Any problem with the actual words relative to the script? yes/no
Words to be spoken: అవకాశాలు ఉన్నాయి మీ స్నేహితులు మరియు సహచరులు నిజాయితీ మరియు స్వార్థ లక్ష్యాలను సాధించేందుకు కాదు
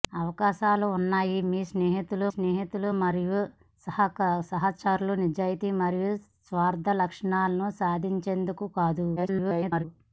yes